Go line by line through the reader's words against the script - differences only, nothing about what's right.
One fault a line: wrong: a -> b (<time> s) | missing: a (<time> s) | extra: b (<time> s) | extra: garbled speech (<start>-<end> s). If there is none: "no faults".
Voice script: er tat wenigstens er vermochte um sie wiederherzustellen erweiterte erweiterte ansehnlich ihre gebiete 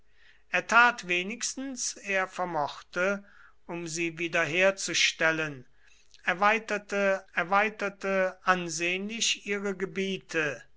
no faults